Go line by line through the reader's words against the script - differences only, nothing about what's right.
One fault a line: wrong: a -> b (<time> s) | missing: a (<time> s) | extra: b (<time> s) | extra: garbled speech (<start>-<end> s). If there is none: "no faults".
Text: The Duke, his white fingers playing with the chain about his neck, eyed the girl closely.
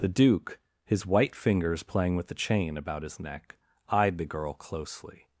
no faults